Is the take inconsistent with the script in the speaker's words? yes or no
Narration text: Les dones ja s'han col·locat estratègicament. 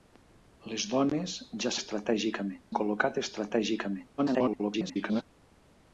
yes